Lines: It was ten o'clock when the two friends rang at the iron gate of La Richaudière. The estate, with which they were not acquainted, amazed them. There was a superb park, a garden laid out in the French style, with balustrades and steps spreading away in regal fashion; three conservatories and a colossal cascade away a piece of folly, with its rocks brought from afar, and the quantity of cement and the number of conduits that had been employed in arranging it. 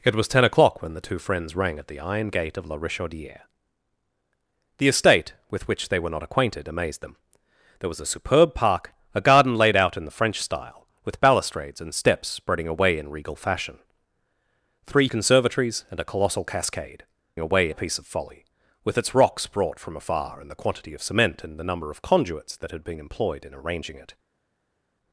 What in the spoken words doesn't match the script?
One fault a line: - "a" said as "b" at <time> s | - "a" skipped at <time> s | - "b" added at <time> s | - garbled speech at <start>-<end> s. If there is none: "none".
none